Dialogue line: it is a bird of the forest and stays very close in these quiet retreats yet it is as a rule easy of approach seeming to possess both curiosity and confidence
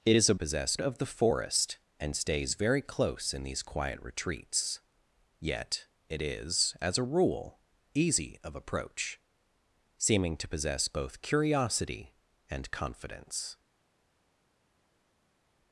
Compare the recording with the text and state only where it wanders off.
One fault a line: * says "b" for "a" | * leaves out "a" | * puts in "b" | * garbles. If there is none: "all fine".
* says "possess" for "bird"